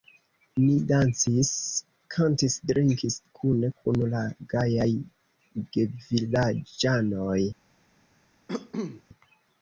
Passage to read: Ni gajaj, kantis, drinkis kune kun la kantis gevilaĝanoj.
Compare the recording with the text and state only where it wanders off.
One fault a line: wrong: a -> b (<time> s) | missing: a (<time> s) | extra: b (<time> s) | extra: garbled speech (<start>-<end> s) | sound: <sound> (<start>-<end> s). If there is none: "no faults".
wrong: gajaj -> dancis (0.9 s)
wrong: kantis -> gajaj (4.5 s)
sound: cough (8.5-9.0 s)